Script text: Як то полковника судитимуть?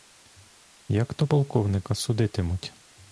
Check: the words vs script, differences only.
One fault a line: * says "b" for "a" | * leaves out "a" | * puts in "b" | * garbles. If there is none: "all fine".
all fine